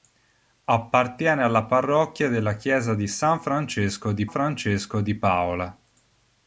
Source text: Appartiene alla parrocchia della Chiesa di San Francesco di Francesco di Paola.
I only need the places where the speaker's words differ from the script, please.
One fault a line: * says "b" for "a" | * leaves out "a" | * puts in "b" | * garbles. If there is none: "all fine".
all fine